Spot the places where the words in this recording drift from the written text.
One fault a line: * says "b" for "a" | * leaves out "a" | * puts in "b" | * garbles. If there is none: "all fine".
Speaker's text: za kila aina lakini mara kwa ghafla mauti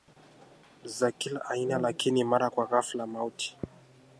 all fine